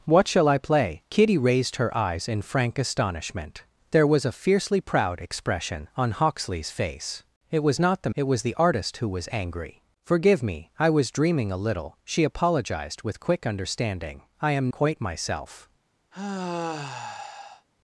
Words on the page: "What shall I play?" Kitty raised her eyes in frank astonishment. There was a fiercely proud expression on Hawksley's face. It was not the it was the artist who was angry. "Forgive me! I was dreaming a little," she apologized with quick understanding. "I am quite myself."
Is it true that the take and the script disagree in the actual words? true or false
false